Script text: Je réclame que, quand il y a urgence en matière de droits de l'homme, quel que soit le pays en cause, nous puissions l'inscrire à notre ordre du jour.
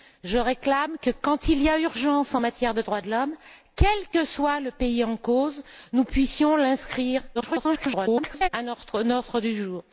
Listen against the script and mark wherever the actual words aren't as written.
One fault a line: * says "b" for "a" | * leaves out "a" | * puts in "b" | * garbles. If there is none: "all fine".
* garbles